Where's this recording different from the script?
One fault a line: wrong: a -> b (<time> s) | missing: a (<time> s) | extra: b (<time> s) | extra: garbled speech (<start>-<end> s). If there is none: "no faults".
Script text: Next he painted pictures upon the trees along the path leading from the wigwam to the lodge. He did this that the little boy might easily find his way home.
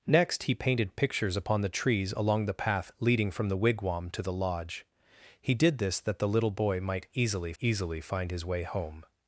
extra: easily (7.6 s)